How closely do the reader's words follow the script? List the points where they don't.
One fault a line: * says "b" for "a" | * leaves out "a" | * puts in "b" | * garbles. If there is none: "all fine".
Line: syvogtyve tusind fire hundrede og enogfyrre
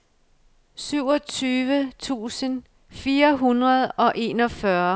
all fine